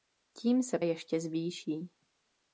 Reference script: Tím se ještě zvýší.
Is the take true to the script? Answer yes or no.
yes